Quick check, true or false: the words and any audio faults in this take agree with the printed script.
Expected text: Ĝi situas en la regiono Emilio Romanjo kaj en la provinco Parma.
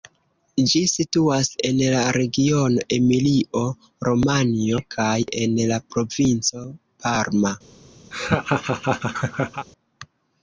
false